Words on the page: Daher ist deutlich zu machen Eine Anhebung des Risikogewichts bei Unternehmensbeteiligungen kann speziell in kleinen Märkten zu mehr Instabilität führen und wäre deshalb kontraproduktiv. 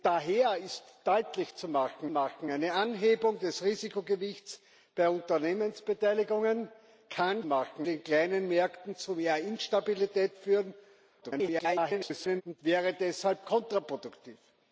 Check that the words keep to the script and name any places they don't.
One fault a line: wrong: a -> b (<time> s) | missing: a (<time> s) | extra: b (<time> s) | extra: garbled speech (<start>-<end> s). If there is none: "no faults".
extra: machen (2.1 s)
wrong: speziell -> machen (7.4 s)
extra: garbled speech (11.2-12.4 s)